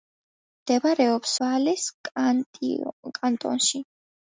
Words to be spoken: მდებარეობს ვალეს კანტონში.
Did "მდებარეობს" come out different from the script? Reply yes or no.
no